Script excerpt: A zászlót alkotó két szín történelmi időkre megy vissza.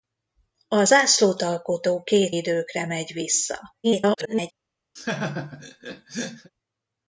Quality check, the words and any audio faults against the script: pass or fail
fail